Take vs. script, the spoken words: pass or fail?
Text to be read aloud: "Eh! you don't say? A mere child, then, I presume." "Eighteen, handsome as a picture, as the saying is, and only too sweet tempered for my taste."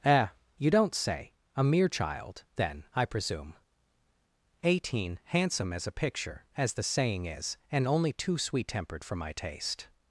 pass